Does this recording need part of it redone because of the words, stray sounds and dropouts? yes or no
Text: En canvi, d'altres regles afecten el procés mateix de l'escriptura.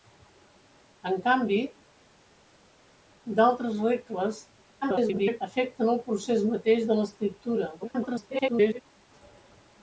yes